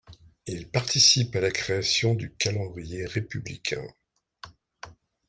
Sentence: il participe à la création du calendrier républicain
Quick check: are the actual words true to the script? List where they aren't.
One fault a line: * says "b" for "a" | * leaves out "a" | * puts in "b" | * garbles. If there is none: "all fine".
all fine